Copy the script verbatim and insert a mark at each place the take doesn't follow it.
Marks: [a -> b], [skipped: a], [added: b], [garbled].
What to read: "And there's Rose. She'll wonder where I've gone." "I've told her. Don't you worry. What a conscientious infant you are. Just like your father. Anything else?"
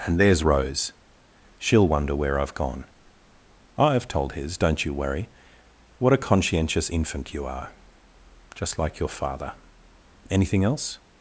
"And there's Rose. She'll wonder where I've gone." "I've told [her. -> his] Don't you worry. What a conscientious infant you are. Just like your father. Anything else?"